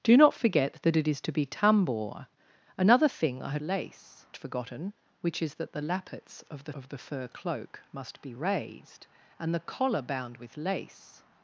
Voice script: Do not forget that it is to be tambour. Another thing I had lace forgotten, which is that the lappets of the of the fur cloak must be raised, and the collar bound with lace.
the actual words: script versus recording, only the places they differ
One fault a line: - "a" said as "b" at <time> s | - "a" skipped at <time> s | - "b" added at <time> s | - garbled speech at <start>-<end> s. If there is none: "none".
none